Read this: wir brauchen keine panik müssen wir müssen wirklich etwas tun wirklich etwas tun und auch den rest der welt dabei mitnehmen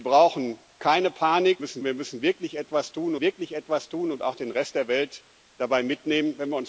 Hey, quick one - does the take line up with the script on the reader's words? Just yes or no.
yes